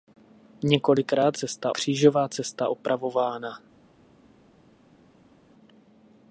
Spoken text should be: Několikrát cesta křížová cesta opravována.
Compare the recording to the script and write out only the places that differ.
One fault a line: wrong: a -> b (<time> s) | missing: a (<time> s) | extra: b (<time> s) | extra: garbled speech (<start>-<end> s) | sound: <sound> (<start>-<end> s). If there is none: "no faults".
no faults